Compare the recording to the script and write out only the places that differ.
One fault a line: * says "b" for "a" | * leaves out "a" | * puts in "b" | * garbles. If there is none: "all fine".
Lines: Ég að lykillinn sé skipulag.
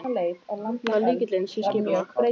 all fine